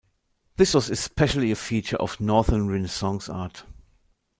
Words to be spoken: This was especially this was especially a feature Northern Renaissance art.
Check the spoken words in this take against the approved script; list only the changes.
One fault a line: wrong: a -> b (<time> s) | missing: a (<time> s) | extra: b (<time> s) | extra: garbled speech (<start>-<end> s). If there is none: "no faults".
missing: this was especially (1.5 s)
extra: of (2.0 s)